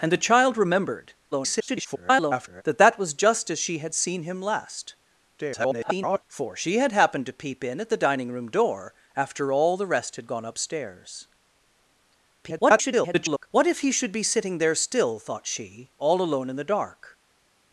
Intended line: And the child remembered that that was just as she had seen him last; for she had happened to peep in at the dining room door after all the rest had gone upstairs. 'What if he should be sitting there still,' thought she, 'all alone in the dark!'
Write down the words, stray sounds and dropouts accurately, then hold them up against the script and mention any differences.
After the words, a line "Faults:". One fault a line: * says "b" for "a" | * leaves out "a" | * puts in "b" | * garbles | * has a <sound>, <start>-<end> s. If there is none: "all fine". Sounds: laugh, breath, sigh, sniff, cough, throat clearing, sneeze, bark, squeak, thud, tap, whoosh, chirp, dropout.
And the child remembered [garbled] that that was just as she had seen him last; [garbled] for she had happened to peep in at the dining room door after all the rest had gone upstairs. [garbled] 'What if he should be sitting there still,' thought she, 'all alone in the dark!'
Faults:
* garbles
* garbles
* garbles